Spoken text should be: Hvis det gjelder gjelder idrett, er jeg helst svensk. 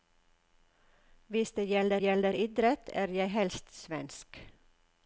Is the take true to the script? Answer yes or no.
yes